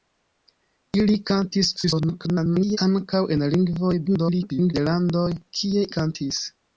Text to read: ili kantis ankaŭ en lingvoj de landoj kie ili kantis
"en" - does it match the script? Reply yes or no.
yes